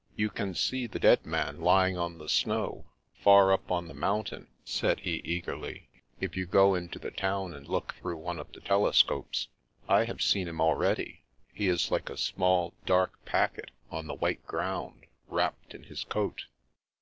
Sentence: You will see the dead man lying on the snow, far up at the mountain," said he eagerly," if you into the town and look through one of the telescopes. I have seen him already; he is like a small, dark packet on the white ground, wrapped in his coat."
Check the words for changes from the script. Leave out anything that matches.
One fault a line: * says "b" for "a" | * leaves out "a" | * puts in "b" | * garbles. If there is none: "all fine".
* says "can" for "will"
* says "on" for "at"
* puts in "go"